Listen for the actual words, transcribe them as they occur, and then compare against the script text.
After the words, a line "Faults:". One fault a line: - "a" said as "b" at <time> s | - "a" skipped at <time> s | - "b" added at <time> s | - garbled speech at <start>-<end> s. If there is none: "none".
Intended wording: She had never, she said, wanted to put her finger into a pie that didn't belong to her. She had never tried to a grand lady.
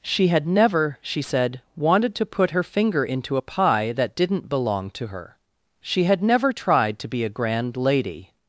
She had never, she said, wanted to put her finger into a pie that didn't belong to her. She had never tried to be a grand lady.
Faults:
- "be" added at 7.1 s